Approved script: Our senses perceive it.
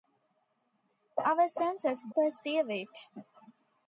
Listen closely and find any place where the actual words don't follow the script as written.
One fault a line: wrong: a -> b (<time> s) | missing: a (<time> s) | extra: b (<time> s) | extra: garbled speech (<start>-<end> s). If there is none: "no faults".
no faults